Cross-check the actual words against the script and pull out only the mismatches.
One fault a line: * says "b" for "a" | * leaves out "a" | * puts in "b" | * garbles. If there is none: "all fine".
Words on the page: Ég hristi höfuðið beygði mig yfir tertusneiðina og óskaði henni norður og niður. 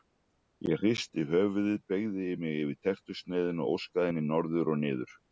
all fine